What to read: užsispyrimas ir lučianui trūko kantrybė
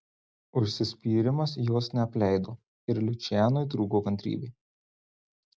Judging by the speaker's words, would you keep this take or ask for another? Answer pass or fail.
fail